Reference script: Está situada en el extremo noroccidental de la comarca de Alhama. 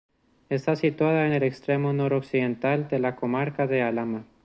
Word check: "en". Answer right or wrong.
wrong